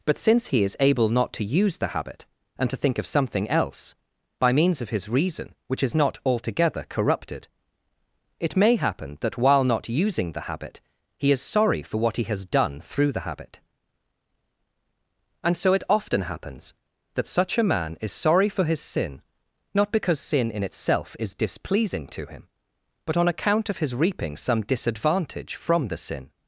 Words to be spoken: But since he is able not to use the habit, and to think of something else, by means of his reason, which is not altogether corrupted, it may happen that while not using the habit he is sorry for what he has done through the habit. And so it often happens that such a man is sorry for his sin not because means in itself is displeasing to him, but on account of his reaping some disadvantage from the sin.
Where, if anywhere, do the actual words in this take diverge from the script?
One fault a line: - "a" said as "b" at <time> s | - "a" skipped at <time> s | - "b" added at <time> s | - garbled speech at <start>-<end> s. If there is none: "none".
- "means" said as "sin" at 20.2 s